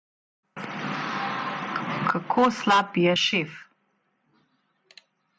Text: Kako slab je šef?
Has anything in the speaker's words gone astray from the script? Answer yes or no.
no